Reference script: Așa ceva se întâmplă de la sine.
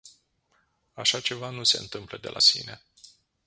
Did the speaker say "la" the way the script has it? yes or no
yes